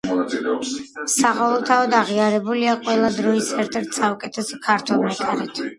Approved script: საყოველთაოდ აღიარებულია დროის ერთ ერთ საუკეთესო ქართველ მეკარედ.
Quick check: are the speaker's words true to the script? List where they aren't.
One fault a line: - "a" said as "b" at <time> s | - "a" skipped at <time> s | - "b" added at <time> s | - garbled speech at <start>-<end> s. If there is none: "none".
- "ყველა" added at 2.9 s